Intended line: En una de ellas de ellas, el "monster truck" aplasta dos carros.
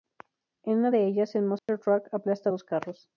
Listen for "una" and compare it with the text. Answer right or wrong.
right